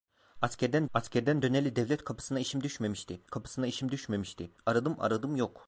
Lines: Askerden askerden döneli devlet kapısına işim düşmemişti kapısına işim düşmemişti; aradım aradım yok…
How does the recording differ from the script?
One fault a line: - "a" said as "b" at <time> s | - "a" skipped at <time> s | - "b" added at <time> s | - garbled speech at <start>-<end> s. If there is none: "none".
none